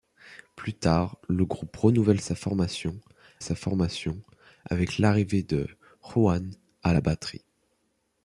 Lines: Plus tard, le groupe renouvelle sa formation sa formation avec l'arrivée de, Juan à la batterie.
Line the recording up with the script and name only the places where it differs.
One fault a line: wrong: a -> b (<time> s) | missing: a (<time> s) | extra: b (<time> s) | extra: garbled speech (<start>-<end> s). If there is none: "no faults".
no faults